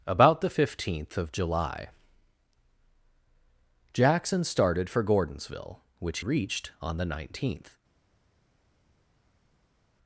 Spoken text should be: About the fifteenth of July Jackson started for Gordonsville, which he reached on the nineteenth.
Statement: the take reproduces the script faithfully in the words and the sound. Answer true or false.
false